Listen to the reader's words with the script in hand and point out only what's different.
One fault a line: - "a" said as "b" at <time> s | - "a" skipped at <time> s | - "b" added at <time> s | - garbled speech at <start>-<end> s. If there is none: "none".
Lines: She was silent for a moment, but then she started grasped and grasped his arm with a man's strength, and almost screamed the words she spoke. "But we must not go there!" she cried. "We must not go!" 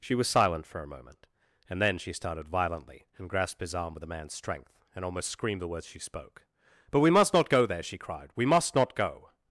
- "but" said as "and" at 1.7 s
- "grasped" said as "violently" at 2.5 s